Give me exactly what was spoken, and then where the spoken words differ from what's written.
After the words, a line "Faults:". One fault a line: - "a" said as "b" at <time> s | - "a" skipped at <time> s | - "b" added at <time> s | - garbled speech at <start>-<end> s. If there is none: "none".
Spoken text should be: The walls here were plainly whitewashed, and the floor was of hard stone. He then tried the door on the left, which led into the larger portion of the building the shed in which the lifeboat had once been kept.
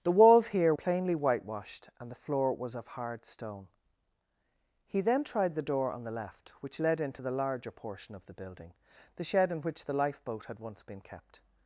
The walls here plainly whitewashed, and the floor was of hard stone. He then tried the door on the left, which led into the larger portion of the building the shed in which the lifeboat had once been kept.
Faults:
- "were" skipped at 0.7 s